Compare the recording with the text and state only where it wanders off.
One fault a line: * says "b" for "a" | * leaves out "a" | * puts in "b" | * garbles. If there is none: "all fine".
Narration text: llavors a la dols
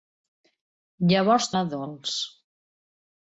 all fine